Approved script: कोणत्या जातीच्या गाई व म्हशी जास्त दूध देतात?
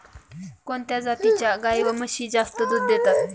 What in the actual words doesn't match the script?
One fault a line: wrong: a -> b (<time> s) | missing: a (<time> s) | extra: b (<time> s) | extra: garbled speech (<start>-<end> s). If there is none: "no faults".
no faults